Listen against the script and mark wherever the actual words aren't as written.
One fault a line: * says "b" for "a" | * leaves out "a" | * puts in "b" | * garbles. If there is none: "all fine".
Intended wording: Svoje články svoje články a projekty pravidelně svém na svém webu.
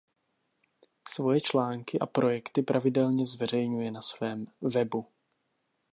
* leaves out "svoje články"
* says "zveřejňuje" for "svém"